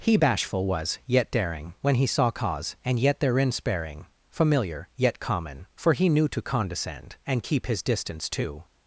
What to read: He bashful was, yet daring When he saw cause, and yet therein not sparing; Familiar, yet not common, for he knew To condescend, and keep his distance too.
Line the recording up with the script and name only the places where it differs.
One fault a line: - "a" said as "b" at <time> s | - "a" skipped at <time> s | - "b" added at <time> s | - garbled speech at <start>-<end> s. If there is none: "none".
- "not" skipped at 3.5 s
- "not" skipped at 5.2 s